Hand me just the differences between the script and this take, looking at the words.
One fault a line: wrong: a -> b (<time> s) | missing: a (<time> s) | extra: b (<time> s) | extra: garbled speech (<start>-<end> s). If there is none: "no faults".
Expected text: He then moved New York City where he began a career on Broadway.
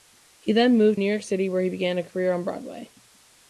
no faults